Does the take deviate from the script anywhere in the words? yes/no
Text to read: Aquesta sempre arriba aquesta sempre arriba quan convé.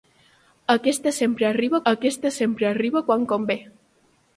no